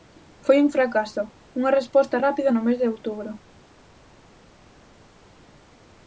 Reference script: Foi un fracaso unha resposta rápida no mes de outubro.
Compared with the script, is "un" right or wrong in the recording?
right